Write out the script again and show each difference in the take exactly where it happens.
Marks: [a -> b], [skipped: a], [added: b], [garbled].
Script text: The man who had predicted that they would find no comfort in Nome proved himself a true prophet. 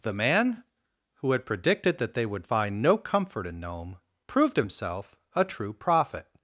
The man who had predicted that they would find no comfort in Nome proved himself a true prophet.